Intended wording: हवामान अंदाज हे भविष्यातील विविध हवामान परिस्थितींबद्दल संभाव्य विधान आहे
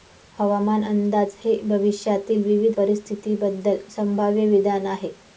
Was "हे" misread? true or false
false